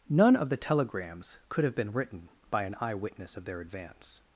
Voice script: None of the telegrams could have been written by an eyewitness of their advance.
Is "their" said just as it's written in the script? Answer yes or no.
yes